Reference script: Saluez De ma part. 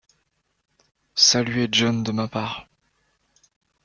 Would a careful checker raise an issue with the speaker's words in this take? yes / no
yes